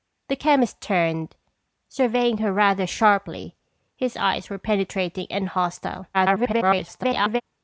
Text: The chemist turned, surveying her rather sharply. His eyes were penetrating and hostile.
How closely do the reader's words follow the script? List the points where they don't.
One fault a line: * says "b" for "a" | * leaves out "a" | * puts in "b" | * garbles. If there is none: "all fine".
* garbles